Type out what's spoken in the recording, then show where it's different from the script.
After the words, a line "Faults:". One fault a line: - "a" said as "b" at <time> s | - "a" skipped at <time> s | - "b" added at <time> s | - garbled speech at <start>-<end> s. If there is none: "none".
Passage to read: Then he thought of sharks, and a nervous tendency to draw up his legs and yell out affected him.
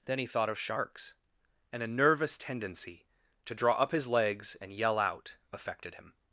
Then he thought of sharks, and a nervous tendency to draw up his legs and yell out affected him.
Faults:
none